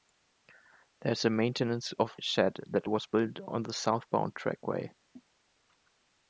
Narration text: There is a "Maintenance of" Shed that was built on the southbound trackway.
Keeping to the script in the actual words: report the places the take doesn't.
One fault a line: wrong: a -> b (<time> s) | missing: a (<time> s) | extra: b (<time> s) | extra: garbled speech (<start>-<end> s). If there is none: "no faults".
no faults